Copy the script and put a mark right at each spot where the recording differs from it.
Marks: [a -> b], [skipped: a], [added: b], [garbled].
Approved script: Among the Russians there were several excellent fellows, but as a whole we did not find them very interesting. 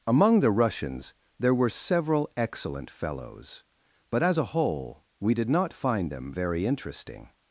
Among the Russians there were several excellent fellows, but as a whole we did not find them very interesting.